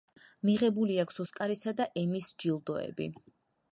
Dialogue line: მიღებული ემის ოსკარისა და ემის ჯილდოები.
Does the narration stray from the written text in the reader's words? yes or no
yes